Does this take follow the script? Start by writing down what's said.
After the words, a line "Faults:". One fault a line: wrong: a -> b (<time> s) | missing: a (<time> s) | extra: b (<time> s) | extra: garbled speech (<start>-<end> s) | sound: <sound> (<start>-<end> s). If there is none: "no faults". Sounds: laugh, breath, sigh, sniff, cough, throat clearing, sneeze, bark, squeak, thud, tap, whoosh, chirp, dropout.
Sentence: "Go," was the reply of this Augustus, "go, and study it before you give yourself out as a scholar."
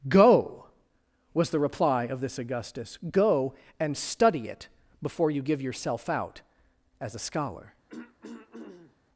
"Go," was the reply of this Augustus, "go, and study it before you give yourself out as a scholar."
Faults:
sound: throat clearing (7.9-9.0 s)